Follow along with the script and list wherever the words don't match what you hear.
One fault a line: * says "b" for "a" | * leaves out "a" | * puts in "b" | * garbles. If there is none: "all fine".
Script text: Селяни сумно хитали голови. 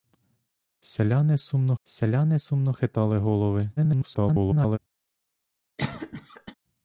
* puts in "селяни сумно"
* garbles